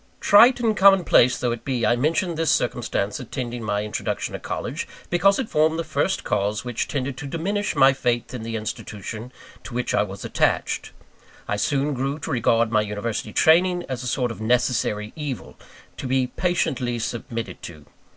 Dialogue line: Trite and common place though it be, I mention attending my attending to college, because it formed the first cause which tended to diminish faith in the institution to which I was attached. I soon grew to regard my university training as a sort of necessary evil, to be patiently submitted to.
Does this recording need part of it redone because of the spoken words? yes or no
yes